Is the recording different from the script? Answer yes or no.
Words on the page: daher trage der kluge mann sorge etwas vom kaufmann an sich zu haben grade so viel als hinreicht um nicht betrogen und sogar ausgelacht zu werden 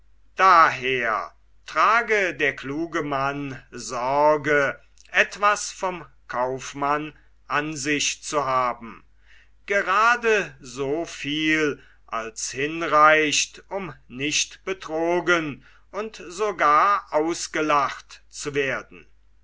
no